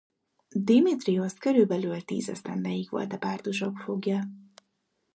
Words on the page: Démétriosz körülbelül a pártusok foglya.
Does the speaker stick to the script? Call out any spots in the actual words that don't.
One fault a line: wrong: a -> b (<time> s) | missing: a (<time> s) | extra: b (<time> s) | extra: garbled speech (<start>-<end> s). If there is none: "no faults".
extra: tíz esztendeig volt (2.0 s)